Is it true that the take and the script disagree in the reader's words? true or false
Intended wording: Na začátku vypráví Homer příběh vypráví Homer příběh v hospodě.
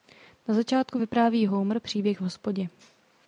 true